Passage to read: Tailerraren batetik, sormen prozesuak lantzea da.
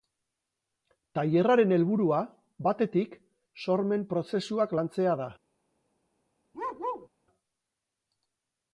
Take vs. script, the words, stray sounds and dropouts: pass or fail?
fail